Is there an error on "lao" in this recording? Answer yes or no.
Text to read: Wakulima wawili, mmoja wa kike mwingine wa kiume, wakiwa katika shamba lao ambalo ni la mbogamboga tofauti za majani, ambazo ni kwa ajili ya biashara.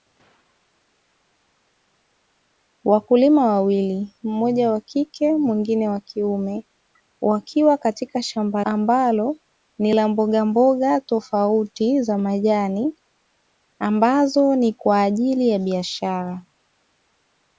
yes